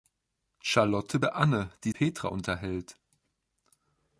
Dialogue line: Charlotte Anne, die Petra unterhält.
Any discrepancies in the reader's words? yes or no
no